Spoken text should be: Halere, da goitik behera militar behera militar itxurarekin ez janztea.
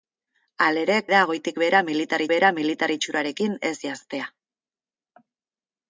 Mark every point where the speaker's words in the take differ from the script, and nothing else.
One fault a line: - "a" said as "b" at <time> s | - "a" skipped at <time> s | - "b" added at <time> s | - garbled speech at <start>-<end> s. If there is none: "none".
none